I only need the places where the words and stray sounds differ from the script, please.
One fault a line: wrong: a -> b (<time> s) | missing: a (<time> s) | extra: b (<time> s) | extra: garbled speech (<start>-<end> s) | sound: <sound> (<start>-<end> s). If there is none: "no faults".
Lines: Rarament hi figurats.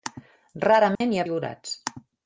sound: dropout (0.9-1.0 s)